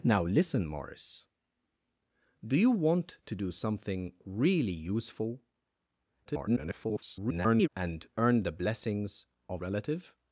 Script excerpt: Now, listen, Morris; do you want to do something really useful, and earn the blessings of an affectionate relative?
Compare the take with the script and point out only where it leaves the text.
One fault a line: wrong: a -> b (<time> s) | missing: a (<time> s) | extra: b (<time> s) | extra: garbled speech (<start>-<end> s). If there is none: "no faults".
extra: garbled speech (6.2-7.7 s)
missing: an affectionate (9.6 s)